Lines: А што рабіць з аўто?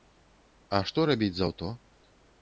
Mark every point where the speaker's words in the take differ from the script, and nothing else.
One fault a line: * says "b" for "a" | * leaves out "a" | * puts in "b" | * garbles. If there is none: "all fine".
all fine